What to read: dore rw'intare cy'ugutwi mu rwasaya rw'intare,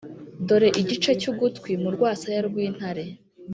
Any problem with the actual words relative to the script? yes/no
yes